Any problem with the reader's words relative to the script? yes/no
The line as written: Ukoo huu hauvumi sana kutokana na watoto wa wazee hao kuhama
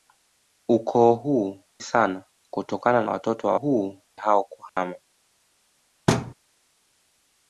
yes